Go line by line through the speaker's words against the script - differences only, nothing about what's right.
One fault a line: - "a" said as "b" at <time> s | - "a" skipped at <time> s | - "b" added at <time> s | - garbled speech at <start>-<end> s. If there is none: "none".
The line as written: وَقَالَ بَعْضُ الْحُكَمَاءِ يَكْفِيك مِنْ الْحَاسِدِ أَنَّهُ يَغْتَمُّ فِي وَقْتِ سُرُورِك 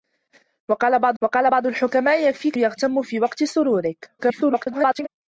- "وَقَالَ بَعْضُ" added at 1.2 s
- "مِنْ الْحَاسِدِ أَنَّهُ" skipped at 2.6 s
- garbled speech at 4.2-5.1 s